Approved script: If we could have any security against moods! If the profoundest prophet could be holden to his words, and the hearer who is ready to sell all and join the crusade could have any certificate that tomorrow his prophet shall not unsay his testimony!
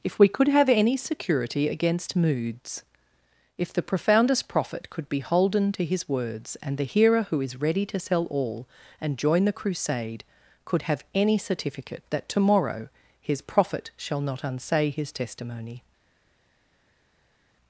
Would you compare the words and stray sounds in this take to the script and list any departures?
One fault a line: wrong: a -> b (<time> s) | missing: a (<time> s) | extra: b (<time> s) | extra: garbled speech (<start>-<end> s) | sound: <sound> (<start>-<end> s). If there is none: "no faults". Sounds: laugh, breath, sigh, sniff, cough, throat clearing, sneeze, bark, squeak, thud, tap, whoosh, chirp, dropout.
no faults